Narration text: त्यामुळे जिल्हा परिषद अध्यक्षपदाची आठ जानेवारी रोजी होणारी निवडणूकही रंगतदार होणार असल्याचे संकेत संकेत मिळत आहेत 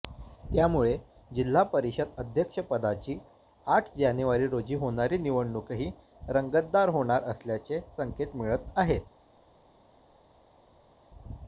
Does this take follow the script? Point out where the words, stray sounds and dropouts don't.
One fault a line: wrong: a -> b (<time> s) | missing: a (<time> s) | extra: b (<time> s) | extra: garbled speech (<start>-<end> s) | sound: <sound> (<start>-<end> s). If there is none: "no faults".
missing: संकेत (8.4 s)